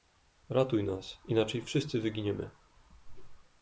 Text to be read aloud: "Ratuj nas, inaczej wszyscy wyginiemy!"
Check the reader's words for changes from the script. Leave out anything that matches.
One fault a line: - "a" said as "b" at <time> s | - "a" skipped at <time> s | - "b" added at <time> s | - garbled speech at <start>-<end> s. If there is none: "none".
none